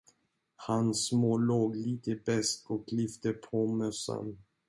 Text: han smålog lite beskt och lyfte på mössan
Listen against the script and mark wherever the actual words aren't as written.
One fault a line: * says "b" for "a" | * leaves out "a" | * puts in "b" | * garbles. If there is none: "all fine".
all fine